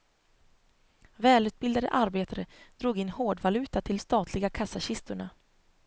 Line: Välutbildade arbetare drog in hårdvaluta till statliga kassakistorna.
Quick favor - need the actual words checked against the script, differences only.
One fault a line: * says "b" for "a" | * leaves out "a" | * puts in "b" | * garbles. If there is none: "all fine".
all fine